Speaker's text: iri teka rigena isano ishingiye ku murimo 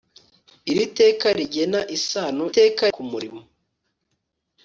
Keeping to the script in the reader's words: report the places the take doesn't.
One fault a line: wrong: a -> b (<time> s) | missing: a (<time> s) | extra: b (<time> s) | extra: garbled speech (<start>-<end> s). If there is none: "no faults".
wrong: ishingiye -> teka (2.5 s)